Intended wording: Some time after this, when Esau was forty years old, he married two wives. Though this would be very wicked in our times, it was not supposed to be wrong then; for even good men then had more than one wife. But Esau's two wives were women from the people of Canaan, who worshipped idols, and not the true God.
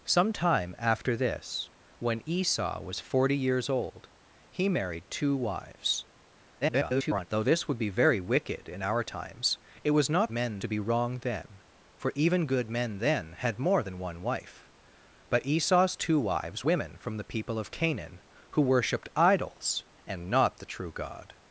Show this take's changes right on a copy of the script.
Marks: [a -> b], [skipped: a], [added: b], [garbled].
Some time after this, when Esau was forty years old, he married two wives. [garbled] Though this would be very wicked in our times, it was not [supposed -> men] to be wrong then; for even good men then had more than one wife. But Esau's two wives [skipped: were] women from the people of Canaan, who worshipped idols, and not the true God.